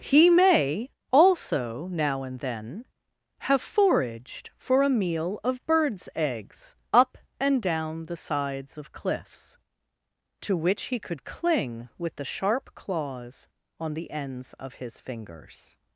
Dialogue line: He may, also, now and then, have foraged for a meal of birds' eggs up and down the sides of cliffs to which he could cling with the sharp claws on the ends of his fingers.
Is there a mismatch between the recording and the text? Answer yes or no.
no